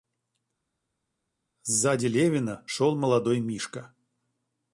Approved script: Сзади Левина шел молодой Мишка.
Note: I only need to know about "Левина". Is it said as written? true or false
true